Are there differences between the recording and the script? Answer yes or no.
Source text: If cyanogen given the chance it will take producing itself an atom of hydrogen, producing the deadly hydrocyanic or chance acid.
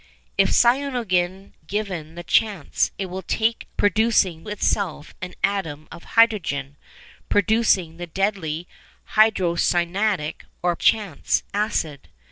no